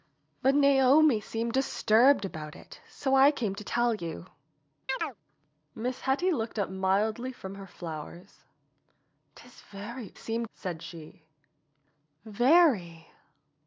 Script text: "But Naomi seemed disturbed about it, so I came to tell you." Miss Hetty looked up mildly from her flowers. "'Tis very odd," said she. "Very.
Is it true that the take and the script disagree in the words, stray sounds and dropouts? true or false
true